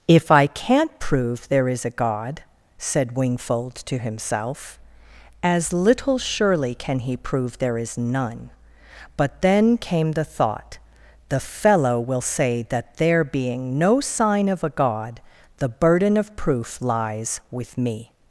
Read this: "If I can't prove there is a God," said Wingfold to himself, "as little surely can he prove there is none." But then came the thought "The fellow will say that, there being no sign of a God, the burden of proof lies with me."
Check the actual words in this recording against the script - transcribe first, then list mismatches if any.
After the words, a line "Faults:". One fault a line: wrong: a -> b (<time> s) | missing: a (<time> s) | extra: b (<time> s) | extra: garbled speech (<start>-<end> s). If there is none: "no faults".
"If I can't prove there is a God," said Wingfold to himself, "as little surely can he prove there is none." But then came the thought "The fellow will say that, there being no sign of a God, the burden of proof lies with me."
Faults:
no faults